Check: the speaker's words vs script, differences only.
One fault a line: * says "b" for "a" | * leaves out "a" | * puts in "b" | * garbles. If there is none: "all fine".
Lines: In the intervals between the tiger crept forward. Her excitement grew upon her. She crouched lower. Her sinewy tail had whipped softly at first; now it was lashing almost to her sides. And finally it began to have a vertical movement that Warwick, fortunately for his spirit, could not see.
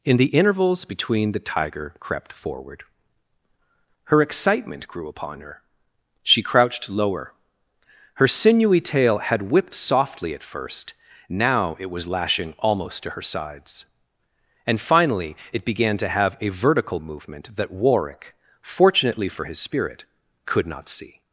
all fine